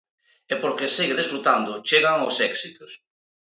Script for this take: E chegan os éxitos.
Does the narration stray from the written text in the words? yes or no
yes